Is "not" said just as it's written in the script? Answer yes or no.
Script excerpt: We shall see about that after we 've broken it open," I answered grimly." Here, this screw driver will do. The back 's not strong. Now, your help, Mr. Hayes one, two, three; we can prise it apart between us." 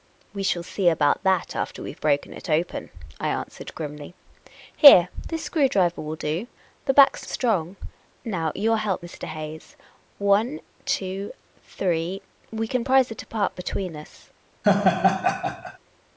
no